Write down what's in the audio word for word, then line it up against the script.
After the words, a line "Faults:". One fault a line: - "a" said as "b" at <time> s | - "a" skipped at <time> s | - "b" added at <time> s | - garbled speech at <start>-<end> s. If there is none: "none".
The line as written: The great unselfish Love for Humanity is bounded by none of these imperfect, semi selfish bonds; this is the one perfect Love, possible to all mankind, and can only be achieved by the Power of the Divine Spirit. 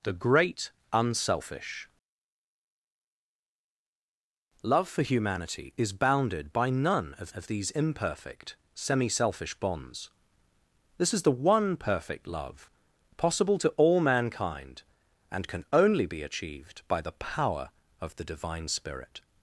The great unselfish Love for Humanity is bounded by none of of these imperfect, semi selfish bonds; this is the one perfect Love, possible to all mankind, and can only be achieved by the Power of the Divine Spirit.
Faults:
- "of" added at 7.3 s